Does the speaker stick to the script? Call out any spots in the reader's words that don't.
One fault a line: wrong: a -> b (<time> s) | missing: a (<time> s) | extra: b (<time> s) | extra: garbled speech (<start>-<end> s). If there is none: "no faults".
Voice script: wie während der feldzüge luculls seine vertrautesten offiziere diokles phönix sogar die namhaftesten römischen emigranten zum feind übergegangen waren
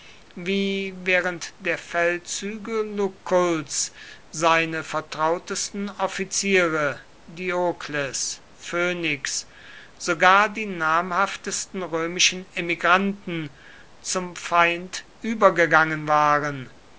no faults